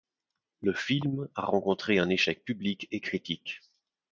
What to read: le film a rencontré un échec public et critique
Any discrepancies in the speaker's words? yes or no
no